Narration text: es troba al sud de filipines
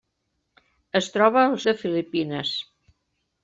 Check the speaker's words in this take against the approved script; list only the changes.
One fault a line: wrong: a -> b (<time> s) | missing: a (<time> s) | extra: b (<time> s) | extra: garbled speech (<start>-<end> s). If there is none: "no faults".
missing: sud (1.6 s)